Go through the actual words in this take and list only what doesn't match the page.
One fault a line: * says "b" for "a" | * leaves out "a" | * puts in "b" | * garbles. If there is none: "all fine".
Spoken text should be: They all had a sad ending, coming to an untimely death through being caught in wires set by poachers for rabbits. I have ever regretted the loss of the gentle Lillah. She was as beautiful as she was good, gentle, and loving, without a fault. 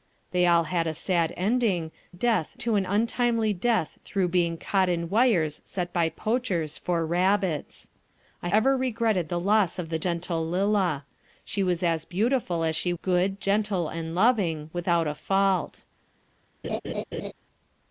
* says "death" for "coming"
* leaves out "have"
* leaves out "was"